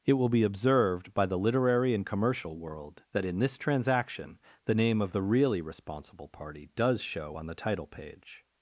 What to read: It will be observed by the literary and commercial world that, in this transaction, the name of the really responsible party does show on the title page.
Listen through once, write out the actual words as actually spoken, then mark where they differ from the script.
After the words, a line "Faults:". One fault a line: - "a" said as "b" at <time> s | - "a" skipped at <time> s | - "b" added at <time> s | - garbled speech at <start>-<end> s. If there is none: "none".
It will be observed by the literary and commercial world that, in this transaction, the name of the really responsible party does show on the title page.
Faults:
none